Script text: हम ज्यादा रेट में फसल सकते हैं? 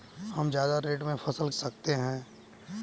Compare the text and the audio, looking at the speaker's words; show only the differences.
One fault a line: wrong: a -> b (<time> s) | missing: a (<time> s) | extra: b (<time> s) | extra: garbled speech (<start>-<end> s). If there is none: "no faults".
no faults